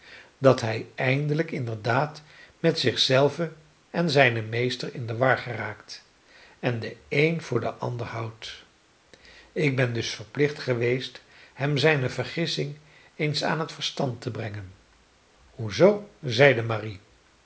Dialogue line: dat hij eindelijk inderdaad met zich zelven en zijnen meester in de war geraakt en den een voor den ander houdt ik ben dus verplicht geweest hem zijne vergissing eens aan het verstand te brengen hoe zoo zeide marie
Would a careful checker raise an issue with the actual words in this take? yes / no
no